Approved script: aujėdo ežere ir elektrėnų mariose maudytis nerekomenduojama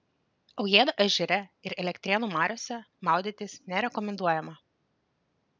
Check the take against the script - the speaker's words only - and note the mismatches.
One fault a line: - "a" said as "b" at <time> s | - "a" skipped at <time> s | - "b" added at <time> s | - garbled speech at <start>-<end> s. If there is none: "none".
none